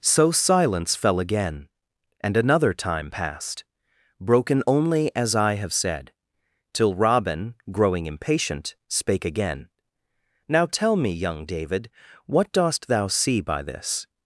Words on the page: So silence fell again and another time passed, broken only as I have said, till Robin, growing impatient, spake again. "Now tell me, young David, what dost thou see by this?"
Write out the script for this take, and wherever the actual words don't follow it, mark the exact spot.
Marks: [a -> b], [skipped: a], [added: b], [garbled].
So silence fell again and another time passed, broken only as I have said, till Robin, growing impatient, spake again. "Now tell me, young David, what dost thou see by this?"